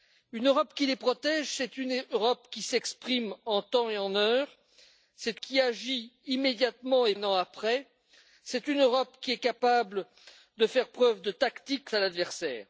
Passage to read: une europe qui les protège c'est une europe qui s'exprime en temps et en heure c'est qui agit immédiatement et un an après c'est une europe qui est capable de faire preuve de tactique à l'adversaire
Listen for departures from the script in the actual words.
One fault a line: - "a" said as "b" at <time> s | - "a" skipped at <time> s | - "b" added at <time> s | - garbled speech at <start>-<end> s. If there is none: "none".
none